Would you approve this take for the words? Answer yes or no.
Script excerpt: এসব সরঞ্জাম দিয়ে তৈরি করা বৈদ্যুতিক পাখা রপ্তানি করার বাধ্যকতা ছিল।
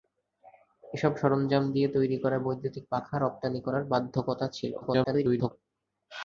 no